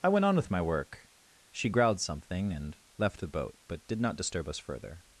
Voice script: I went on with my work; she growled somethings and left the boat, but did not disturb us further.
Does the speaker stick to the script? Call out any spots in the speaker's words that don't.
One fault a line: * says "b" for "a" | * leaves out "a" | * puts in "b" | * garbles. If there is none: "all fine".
* says "something" for "somethings"